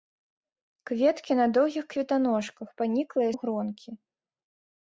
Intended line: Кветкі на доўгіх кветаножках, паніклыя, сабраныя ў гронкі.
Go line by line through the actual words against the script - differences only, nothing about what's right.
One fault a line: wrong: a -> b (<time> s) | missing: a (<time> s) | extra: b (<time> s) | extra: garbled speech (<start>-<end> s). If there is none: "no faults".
missing: сабраныя (3.3 s)